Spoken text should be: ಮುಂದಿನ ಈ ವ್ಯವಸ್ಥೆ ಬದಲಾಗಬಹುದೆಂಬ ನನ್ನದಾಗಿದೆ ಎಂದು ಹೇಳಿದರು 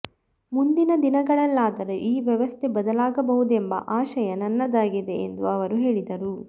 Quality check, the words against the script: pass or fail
fail